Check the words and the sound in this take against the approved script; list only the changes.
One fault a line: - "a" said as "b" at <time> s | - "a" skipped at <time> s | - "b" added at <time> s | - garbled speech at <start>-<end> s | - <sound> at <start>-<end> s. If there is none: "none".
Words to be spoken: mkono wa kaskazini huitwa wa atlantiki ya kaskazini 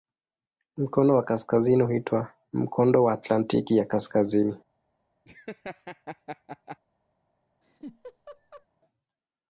- "mkondo" added at 2.5 s
- laugh at 5.3-6.8 s
- laugh at 7.6-8.7 s